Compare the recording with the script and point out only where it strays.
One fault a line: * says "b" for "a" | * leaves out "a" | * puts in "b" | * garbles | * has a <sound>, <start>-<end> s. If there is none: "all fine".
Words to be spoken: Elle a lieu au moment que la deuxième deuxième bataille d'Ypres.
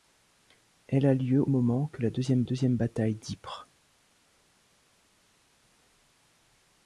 all fine